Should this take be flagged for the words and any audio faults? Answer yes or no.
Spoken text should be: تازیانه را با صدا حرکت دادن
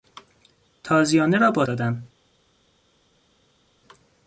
yes